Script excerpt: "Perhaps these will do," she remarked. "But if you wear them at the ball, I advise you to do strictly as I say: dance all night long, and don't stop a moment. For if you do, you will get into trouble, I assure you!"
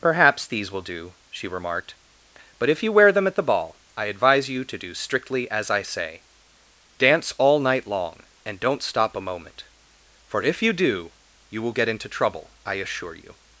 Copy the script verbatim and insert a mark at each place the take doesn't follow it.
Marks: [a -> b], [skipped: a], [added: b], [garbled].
"Perhaps these will do," she remarked. "But if you wear them at the ball, I advise you to do strictly as I say: dance all night long, and don't stop a moment. For if you do, you will get into trouble, I assure you!"